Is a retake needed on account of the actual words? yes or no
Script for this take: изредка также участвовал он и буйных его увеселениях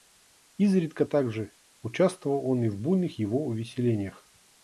yes